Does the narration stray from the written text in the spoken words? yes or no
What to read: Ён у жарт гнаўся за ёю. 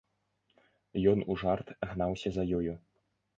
no